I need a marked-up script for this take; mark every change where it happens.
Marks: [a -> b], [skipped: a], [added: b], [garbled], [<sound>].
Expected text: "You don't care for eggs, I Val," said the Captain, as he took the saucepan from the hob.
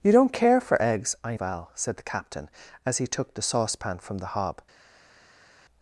"You don't care for eggs, I Val," said the Captain, as he took the saucepan from the hob.